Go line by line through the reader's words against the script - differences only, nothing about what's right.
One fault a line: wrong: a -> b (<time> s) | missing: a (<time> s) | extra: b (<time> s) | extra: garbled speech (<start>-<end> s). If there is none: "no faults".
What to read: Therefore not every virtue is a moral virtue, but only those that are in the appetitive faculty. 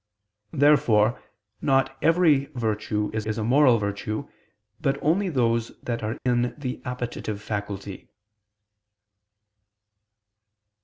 extra: is (3.3 s)